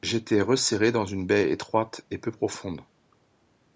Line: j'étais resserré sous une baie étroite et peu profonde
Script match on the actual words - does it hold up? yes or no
no